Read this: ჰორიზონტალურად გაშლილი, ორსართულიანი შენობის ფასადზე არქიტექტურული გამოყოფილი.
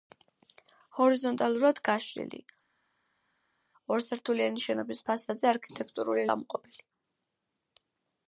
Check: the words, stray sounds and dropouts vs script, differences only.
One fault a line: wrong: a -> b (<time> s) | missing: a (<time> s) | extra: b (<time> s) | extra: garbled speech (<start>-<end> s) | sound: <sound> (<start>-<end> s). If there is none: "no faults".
no faults